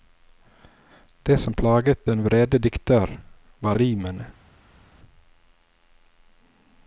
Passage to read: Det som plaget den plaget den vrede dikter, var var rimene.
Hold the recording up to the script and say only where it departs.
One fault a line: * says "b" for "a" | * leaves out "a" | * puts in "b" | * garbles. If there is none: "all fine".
* leaves out "plaget den"
* leaves out "var"